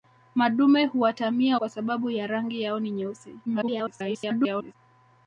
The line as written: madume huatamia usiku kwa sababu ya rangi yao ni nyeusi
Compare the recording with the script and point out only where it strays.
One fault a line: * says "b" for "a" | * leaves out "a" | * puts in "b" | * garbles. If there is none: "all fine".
* leaves out "usiku"
* garbles